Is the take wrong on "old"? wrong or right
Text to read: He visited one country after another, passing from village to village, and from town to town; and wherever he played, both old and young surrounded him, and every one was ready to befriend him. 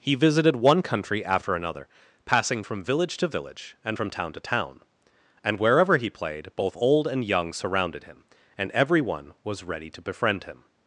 right